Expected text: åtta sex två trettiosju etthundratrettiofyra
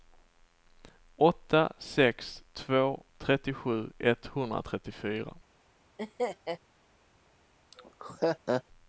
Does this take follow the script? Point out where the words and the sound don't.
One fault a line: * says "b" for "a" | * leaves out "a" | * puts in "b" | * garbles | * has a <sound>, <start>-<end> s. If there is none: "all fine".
* has a laugh, 6.0-6.6 s
* has a laugh, 7.7-8.6 s